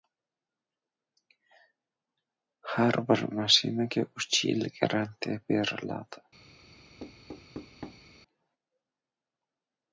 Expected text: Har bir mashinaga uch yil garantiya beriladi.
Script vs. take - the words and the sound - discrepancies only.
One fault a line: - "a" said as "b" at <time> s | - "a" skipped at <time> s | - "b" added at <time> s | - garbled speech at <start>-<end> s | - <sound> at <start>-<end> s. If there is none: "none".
- thud at 7.0-8.1 s